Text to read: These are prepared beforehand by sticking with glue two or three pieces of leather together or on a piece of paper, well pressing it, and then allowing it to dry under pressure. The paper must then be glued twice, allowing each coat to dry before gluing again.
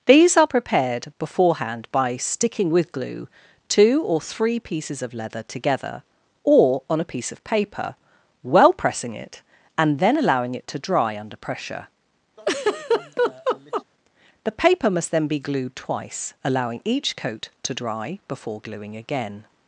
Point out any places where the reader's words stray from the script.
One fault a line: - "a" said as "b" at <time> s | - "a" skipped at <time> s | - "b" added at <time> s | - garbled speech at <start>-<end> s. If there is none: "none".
none